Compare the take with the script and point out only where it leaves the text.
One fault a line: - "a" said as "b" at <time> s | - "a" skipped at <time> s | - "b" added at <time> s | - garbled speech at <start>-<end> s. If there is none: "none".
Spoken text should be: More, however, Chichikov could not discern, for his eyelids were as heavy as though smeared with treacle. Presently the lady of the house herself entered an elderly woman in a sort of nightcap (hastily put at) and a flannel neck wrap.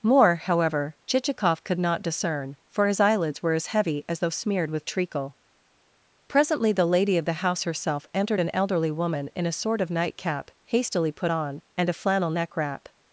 - "at" said as "on" at 11.3 s